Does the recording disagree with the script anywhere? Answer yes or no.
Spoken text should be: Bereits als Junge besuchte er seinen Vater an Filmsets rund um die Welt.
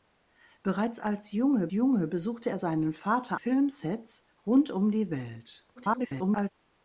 yes